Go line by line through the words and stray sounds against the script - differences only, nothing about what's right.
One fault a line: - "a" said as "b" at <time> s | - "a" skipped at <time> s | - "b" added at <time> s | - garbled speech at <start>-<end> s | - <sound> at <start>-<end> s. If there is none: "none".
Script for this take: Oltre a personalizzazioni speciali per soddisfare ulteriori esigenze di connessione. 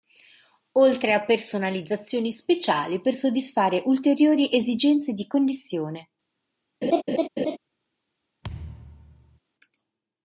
- laugh at 6.8-7.6 s
- thud at 8.4-9.4 s